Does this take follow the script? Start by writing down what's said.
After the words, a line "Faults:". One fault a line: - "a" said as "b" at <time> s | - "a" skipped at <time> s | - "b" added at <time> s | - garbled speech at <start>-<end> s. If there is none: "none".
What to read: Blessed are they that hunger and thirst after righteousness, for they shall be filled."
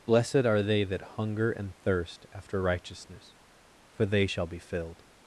Blessed are they that hunger and thirst after righteousness, for they shall be filled."
Faults:
none